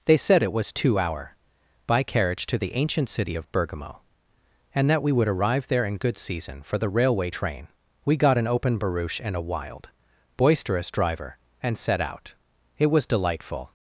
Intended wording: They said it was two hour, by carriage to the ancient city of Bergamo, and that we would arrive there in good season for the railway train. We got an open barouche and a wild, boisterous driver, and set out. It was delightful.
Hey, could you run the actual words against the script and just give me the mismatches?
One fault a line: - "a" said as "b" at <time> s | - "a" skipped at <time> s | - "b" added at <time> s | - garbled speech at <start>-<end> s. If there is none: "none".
none